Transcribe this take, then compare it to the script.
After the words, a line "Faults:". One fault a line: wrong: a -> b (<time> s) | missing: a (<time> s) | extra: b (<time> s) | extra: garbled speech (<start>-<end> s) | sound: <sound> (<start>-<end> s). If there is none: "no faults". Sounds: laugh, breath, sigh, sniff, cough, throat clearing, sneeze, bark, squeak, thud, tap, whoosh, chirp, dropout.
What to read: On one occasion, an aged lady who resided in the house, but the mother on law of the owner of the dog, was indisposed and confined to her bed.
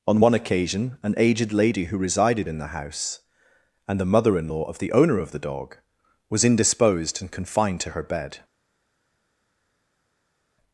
On one occasion, an aged lady who resided in the house, and the mother in law of the owner of the dog, was indisposed and confined to her bed.
Faults:
wrong: but -> and (3.9 s)
wrong: on -> in (4.4 s)